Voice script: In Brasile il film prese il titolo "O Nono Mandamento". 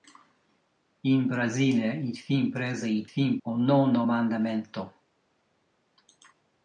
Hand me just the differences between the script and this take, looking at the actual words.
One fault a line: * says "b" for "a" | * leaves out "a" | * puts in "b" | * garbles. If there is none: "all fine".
* says "film" for "titolo"